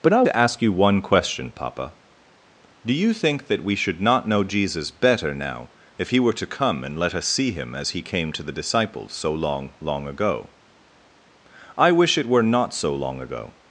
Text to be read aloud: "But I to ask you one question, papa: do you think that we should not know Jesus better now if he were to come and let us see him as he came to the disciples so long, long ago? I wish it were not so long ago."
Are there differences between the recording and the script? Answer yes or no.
no